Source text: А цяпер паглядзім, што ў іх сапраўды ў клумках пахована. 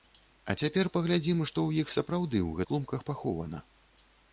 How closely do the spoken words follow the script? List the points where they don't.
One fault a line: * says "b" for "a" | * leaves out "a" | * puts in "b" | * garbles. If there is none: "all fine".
all fine